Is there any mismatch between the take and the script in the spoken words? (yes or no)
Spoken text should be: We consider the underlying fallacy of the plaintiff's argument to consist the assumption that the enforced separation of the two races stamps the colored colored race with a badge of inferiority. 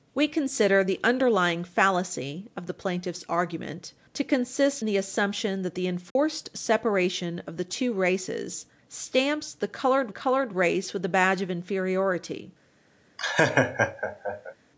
no